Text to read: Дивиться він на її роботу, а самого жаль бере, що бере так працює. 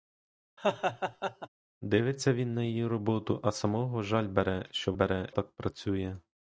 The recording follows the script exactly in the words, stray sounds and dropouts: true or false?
false